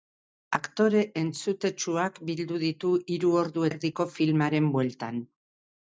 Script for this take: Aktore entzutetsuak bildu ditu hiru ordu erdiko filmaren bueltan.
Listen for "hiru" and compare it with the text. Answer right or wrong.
right